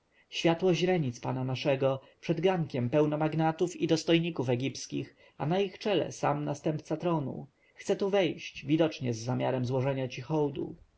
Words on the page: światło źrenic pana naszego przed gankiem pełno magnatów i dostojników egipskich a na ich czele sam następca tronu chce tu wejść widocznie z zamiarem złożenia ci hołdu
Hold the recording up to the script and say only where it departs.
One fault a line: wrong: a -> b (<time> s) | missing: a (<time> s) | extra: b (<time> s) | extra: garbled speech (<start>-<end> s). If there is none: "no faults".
no faults